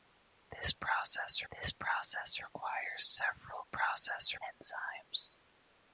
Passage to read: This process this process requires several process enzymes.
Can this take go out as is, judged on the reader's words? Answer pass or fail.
pass